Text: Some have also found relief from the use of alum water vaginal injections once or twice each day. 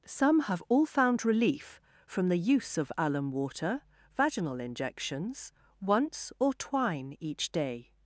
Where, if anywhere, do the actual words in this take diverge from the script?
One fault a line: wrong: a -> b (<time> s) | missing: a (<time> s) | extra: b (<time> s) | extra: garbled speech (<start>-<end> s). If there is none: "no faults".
wrong: also -> all (0.7 s)
wrong: twice -> twine (6.5 s)